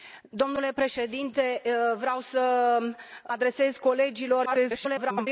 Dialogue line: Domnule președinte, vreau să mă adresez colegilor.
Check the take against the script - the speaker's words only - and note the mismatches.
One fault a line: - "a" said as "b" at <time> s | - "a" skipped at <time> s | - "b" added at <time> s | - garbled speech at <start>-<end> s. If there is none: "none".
- "mă" skipped at 2.8 s
- garbled speech at 4.4-5.3 s